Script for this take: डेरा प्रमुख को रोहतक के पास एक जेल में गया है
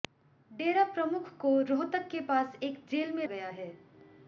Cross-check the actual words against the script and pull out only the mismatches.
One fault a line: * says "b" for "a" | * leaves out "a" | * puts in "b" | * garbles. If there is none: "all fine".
all fine